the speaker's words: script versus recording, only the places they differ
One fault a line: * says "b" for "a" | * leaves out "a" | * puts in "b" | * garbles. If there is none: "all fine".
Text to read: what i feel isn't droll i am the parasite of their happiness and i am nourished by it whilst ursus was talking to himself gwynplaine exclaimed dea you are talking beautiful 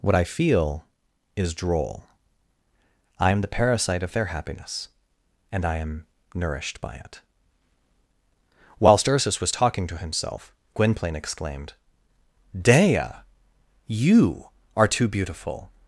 * says "is" for "isn't"
* says "too" for "talking"